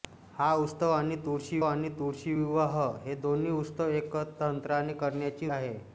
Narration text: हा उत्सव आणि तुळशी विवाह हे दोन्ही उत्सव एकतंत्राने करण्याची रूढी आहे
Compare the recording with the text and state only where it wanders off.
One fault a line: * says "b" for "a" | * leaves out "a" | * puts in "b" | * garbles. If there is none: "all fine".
* puts in "आणि तुळशी"
* leaves out "रूढी"